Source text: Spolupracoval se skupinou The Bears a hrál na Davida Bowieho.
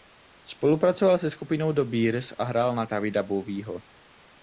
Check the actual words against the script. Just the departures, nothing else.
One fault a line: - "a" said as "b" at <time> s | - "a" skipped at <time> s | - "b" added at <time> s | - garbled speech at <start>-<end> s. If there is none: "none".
none